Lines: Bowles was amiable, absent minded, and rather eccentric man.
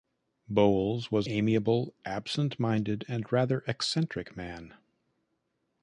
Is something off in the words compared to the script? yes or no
no